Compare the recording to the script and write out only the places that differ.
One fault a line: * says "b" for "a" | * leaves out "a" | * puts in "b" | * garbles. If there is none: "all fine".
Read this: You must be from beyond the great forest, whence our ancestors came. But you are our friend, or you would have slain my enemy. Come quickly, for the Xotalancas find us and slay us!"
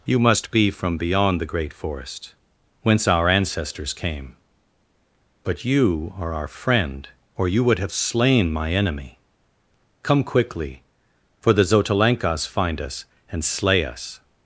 all fine